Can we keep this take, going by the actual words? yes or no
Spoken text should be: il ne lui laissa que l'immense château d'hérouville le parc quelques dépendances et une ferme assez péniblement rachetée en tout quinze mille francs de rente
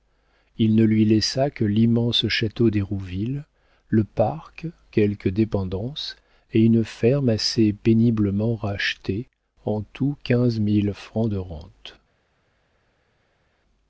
yes